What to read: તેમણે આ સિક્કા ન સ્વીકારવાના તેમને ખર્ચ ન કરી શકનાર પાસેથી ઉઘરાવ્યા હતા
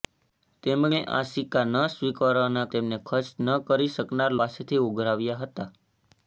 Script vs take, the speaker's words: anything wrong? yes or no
no